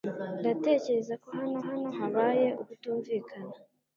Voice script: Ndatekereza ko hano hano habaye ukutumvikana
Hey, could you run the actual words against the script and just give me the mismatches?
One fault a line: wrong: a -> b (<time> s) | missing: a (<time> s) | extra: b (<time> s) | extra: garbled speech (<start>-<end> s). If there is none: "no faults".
no faults